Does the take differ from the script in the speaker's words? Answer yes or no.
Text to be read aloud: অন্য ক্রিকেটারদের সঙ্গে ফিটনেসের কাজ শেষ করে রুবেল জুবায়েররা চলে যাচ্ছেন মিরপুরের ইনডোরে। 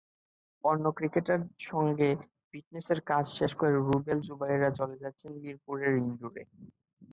no